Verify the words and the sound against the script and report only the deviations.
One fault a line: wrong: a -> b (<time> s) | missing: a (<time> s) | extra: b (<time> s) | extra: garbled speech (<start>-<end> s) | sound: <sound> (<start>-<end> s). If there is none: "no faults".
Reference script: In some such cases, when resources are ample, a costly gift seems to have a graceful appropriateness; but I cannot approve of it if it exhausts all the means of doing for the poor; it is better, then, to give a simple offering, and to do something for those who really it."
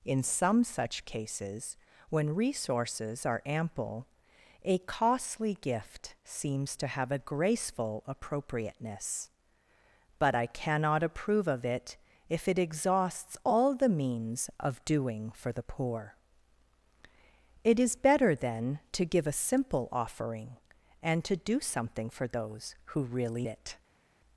no faults